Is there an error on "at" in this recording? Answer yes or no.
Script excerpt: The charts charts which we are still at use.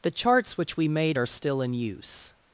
yes